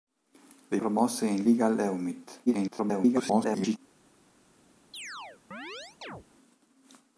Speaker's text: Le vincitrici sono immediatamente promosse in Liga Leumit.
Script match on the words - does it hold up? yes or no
no